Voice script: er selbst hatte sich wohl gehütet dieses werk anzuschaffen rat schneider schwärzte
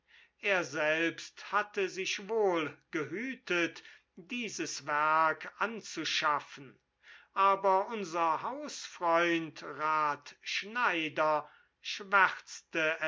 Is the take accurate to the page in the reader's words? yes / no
no